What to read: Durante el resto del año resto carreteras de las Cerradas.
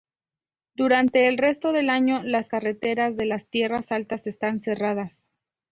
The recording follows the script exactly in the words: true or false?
false